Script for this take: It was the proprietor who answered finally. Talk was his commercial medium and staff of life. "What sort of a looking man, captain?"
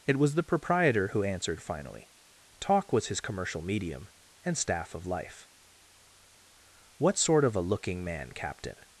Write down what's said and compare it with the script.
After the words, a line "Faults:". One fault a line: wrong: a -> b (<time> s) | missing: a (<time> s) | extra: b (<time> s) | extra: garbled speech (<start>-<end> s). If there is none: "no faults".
It was the proprietor who answered finally. Talk was his commercial medium and staff of life. "What sort of a looking man, captain?"
Faults:
no faults